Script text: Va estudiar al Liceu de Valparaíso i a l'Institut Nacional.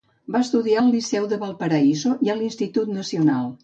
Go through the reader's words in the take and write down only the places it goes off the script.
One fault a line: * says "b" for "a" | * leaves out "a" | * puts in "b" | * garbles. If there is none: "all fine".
all fine